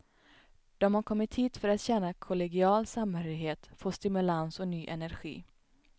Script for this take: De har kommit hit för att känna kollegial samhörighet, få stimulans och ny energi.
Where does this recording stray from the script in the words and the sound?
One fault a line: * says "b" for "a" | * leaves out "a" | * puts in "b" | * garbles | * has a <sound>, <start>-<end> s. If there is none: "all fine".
all fine